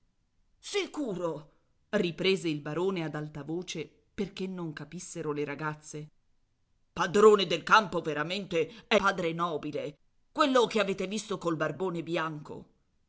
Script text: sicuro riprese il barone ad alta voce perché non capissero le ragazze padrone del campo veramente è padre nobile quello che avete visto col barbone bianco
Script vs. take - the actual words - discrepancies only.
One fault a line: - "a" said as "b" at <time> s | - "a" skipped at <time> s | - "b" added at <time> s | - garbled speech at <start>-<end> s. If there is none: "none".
none